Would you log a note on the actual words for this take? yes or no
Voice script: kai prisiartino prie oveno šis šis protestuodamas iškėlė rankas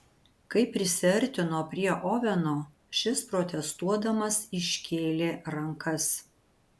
yes